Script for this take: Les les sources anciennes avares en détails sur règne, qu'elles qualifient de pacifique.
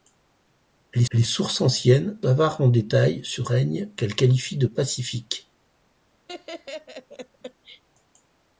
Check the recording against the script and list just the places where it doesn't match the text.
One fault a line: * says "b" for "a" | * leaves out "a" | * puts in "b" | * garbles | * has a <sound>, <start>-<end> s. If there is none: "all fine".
* has a laugh, 6.3-7.8 s